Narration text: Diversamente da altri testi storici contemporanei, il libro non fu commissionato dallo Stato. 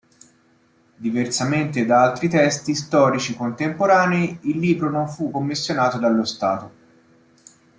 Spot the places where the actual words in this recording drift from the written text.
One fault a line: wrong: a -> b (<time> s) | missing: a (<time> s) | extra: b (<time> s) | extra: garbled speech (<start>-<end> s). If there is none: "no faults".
no faults